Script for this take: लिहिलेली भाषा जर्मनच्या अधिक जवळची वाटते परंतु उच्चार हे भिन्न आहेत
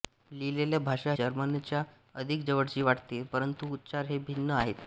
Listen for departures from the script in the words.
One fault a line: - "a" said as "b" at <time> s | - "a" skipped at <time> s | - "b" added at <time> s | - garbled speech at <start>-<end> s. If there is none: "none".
none